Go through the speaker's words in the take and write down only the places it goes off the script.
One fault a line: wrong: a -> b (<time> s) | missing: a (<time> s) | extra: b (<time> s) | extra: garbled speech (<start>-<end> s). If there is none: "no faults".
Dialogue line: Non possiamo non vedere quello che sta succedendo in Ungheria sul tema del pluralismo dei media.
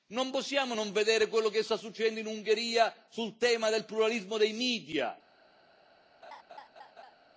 no faults